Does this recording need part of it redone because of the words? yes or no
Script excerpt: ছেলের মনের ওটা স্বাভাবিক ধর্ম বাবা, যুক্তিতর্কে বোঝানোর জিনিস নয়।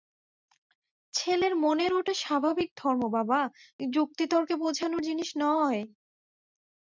no